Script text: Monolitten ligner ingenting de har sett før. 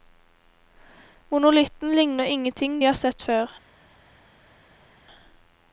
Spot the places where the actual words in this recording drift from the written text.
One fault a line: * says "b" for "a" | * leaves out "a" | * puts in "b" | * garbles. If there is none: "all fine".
all fine